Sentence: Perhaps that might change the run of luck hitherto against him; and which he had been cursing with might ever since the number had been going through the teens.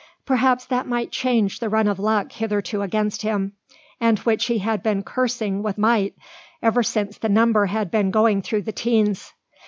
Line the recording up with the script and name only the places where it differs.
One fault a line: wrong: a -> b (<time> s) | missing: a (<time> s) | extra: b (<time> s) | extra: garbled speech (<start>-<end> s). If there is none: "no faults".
no faults